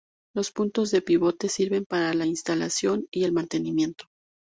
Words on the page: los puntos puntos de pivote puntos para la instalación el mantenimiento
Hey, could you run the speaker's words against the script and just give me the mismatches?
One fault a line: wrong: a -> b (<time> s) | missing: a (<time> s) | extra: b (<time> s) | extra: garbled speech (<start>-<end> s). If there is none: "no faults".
missing: puntos (0.9 s)
wrong: puntos -> sirven (1.5 s)
extra: y (3.1 s)